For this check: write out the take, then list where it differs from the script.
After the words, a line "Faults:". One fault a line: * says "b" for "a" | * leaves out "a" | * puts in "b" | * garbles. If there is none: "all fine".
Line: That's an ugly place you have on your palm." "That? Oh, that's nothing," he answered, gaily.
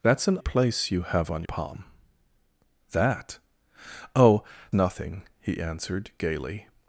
That's an place you have on palm." "That? Oh, nothing," he answered, gaily.
Faults:
* leaves out "ugly"
* leaves out "your"
* leaves out "that's"